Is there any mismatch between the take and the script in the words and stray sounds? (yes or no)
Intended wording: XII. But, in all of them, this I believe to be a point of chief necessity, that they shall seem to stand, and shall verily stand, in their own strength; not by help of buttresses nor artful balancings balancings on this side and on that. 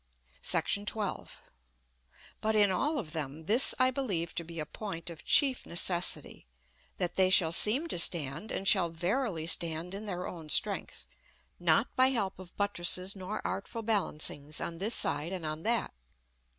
yes